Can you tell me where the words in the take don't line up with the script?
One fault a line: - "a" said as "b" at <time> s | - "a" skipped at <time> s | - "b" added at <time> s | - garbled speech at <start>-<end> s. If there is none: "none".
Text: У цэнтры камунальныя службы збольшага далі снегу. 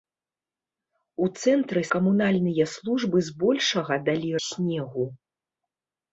none